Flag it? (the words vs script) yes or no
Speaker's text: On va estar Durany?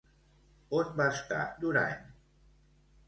no